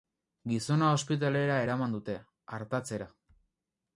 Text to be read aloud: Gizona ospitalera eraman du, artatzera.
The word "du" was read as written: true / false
false